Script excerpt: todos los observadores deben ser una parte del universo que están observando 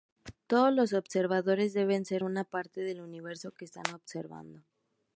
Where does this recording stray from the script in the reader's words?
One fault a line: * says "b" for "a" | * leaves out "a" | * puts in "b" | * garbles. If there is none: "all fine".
all fine